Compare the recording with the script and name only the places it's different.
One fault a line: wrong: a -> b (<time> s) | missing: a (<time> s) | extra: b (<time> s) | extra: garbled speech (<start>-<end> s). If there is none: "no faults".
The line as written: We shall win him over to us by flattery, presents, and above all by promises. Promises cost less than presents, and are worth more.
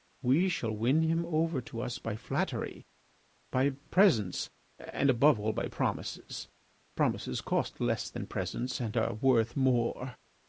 extra: by (3.5 s)